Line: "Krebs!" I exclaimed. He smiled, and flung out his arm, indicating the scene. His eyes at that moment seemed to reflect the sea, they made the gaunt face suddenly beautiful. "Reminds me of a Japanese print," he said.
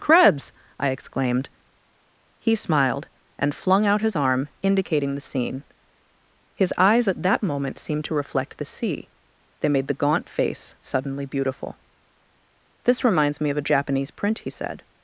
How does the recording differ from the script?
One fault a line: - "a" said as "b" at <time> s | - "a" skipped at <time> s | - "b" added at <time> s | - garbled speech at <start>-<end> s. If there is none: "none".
- "This" added at 12.9 s